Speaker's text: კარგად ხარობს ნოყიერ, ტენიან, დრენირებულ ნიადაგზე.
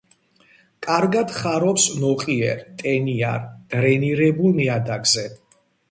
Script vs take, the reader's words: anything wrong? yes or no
no